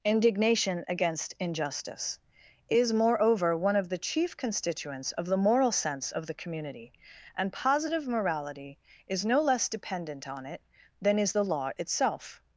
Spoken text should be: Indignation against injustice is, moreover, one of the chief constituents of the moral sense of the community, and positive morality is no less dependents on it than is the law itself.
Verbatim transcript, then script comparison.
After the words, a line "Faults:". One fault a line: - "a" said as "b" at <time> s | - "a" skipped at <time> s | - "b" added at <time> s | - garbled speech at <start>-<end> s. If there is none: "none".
Indignation against injustice is, moreover, one of the chief constituents of the moral sense of the community, and positive morality is no less dependent on it than is the law itself.
Faults:
- "dependents" said as "dependent" at 9.7 s